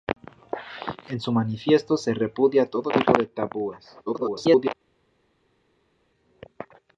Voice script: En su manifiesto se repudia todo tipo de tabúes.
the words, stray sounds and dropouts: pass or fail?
fail